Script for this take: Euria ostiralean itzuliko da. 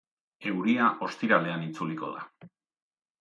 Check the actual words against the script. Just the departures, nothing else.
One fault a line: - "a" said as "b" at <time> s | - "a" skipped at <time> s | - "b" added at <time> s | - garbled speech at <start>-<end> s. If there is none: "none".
none